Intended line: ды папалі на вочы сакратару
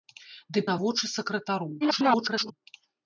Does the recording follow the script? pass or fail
fail